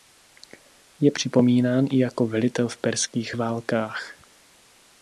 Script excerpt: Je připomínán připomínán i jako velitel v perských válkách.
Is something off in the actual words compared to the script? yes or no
yes